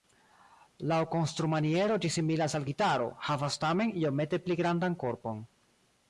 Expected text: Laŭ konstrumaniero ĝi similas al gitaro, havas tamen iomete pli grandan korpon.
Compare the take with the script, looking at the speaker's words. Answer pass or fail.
pass